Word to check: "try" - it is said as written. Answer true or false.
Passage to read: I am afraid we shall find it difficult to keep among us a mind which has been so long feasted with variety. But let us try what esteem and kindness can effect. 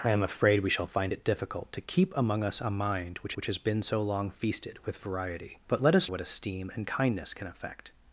false